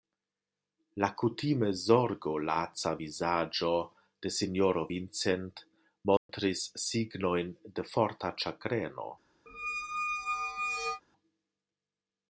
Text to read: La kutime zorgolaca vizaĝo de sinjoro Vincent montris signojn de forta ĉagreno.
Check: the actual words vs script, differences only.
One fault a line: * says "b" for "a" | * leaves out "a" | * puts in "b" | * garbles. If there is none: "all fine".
all fine